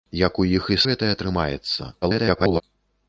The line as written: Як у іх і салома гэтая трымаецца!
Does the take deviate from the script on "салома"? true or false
true